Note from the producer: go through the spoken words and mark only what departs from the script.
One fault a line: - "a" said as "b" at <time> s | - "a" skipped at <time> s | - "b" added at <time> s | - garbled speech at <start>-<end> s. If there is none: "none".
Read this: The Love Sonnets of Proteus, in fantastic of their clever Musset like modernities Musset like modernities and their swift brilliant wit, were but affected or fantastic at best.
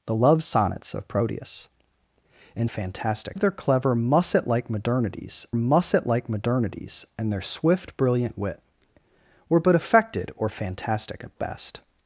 none